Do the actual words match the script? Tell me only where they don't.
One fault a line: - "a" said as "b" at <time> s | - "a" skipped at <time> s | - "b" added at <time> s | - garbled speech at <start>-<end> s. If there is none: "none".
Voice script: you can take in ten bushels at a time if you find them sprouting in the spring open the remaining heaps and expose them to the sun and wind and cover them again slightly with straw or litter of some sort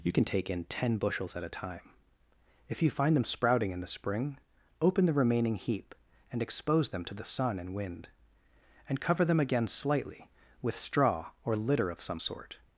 - "heaps" said as "heap" at 5.5 s